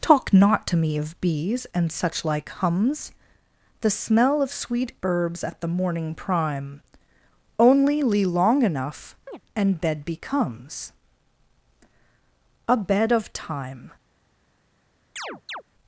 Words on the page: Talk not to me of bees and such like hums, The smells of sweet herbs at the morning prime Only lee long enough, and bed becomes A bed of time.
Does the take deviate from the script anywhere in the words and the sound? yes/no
yes